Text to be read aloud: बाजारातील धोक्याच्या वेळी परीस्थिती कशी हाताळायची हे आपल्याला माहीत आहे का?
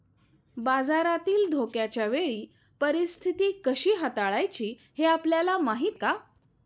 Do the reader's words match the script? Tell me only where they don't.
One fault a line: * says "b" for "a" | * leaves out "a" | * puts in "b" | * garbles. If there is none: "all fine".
* leaves out "आहे"